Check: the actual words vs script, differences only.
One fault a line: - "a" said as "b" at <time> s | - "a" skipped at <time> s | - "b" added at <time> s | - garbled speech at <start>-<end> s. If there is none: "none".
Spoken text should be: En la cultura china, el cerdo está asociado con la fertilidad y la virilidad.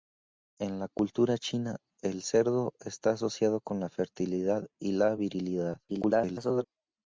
- garbled speech at 5.9-6.6 s